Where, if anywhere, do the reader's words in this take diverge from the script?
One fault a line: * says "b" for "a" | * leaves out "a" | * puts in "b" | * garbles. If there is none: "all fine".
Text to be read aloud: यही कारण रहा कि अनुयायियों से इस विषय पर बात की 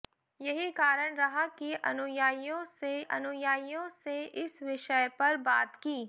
* puts in "अनुयायियों से"